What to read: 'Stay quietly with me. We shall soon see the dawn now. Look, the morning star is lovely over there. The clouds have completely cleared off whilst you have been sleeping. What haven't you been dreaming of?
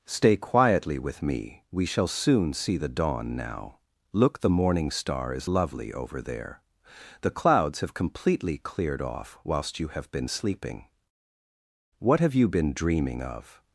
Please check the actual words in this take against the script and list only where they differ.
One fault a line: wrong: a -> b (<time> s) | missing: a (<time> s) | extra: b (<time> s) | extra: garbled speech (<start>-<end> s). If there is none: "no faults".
wrong: haven't -> have (12.2 s)